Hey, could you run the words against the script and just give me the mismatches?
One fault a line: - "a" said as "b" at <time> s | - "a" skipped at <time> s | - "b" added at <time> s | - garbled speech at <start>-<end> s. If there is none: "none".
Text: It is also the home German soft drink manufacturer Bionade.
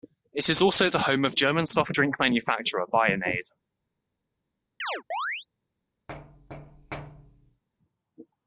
- "of" added at 1.2 s